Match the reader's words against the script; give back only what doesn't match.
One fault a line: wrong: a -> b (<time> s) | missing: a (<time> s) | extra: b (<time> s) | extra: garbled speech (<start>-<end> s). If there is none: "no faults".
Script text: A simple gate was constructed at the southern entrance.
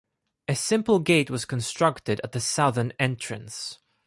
no faults